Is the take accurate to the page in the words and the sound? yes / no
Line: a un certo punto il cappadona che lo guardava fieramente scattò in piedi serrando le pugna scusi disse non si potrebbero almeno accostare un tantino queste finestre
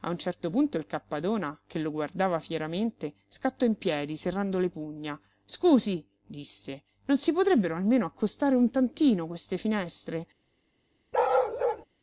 no